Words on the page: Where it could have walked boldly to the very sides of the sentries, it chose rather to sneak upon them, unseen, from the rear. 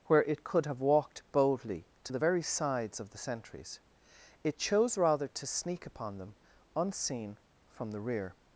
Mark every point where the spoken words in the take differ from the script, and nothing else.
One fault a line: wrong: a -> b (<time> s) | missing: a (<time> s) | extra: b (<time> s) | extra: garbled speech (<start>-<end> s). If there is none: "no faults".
no faults